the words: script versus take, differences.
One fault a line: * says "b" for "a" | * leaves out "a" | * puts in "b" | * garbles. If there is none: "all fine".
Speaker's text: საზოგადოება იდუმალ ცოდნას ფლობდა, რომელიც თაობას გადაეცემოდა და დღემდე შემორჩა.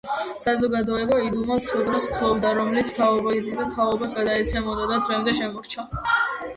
* puts in "თაობიდან"